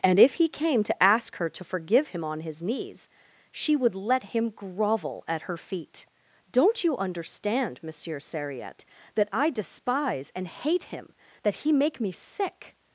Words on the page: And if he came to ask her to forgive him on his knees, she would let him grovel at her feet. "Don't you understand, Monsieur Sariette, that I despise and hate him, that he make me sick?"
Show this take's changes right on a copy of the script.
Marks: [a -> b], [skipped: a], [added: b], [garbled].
And if he came to ask her to forgive him on his knees, she would let him grovel at her feet. "Don't you understand, Monsieur Sariette, that I despise and hate him, that he make me sick?"